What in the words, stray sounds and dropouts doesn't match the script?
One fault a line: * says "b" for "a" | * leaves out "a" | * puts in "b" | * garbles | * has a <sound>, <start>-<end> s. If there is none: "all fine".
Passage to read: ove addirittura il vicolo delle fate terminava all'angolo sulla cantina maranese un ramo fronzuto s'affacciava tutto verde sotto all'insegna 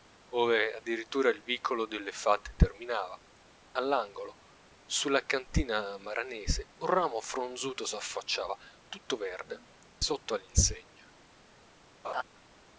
* has a laugh, 12.0-12.2 s